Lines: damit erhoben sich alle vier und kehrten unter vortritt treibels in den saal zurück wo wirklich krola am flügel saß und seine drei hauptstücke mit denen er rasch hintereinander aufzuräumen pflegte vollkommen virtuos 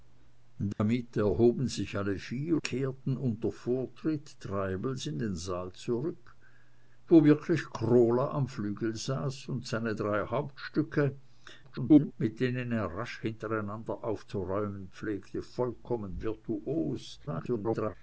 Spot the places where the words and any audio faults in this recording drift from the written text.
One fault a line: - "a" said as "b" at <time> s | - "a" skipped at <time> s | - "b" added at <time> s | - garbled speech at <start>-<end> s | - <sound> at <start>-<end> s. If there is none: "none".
- dropout at 0.7-0.8 s
- "und" skipped at 2.6 s
- garbled speech at 11.6-12.1 s
- garbled speech at 17.3-18.0 s